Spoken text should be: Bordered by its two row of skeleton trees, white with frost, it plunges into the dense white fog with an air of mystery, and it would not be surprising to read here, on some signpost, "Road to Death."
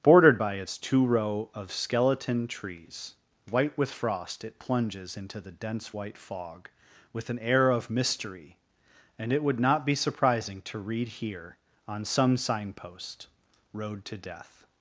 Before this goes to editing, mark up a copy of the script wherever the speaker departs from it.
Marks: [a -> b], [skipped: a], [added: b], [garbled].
Bordered by its two row of skeleton trees, white with frost, it plunges into the dense white fog with an air of mystery, and it would not be surprising to read here, on some signpost, "Road to Death."